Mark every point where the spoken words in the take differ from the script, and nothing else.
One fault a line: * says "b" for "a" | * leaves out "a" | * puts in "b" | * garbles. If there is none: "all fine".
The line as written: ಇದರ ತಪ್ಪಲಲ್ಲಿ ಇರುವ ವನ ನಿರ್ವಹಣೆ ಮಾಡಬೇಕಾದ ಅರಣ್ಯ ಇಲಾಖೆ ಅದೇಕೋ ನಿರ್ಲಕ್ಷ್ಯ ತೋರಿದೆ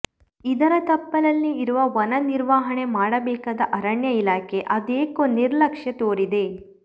all fine